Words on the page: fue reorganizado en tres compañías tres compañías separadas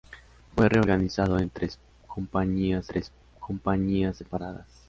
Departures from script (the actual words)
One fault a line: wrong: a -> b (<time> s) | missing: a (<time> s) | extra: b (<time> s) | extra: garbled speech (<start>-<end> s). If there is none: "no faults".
no faults